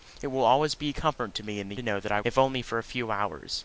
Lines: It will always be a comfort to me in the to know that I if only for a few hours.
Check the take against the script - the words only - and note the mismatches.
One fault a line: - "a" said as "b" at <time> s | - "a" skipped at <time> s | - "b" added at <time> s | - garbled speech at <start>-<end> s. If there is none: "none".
none